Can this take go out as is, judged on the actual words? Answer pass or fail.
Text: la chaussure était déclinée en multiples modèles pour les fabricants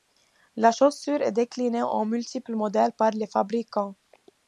fail